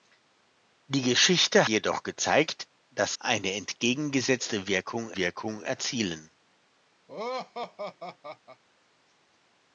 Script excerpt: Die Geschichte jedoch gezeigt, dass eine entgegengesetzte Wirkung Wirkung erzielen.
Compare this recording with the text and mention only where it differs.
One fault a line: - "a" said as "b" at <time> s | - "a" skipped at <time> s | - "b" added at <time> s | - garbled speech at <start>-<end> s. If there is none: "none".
none